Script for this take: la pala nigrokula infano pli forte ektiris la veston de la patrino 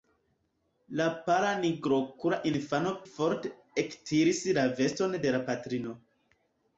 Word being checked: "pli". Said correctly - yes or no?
no